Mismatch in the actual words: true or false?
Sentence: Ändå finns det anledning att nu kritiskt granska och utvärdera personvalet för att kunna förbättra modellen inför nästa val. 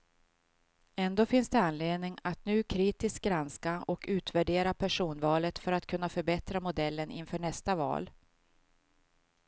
false